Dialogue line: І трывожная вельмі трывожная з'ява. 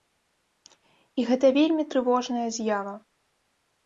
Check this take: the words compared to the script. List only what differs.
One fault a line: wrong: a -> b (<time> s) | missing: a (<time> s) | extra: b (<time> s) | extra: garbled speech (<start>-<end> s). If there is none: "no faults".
wrong: трывожная -> гэта (1.3 s)